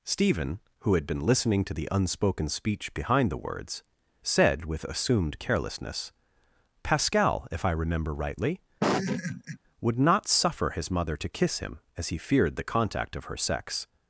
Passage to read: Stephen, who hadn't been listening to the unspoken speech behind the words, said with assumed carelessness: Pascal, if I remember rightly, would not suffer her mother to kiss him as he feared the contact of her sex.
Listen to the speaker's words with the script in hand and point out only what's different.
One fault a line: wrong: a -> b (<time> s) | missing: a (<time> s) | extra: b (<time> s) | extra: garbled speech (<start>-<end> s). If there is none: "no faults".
wrong: hadn't -> had (0.9 s)
wrong: her -> his (10.7 s)